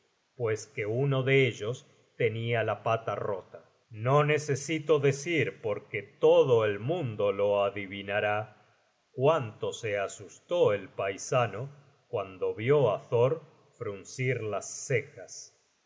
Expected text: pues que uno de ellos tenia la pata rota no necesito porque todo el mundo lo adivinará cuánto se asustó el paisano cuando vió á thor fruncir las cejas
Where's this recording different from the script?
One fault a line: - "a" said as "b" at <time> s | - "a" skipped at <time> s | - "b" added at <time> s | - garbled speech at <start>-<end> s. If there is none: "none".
- "decir" added at 5.0 s